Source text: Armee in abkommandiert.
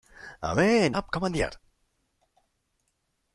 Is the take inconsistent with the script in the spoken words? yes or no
no